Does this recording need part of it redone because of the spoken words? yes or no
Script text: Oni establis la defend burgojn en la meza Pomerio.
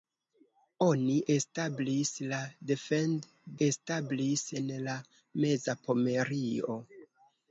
yes